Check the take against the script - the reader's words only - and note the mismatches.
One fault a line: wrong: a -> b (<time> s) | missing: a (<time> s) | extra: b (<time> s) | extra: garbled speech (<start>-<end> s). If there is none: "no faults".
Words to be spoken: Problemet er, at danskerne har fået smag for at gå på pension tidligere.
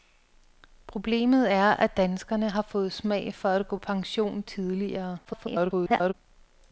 missing: på (3.8 s)
extra: garbled speech (5.2-6.1 s)